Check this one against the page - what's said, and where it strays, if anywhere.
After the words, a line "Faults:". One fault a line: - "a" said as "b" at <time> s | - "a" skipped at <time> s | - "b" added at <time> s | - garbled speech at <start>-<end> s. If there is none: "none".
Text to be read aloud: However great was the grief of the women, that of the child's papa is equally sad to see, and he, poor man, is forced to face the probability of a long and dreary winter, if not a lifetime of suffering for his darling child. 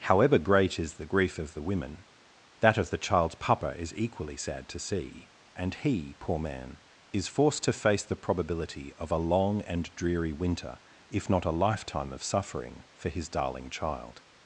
However great is the grief of the women, that of the child's papa is equally sad to see, and he, poor man, is forced to face the probability of a long and dreary winter, if not a lifetime of suffering for his darling child.
Faults:
- "was" said as "is" at 0.8 s